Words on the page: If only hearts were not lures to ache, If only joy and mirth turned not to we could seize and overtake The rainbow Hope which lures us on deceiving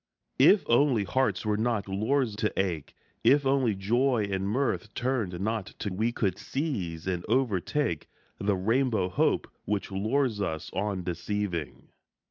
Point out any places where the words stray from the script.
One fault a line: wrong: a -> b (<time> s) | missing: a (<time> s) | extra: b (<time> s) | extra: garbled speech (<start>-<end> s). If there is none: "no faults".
no faults